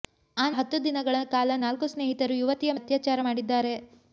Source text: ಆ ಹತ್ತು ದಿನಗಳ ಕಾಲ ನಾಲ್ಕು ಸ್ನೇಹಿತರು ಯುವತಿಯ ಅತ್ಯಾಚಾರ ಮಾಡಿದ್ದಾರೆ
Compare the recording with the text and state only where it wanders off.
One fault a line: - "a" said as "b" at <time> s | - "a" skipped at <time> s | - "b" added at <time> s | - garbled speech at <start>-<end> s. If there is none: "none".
none